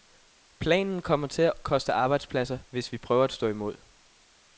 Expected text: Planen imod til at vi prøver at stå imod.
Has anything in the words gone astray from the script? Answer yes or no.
yes